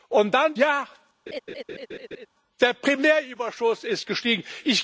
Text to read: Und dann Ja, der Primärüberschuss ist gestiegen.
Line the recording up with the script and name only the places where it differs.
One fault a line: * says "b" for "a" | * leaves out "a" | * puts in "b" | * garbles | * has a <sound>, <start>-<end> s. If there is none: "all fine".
* has a laugh, 1.3-2.3 s